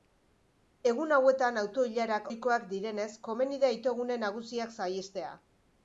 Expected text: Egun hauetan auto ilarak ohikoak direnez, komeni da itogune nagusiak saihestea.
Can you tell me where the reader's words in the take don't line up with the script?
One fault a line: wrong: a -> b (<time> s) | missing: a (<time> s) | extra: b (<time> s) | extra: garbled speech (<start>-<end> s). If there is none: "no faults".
no faults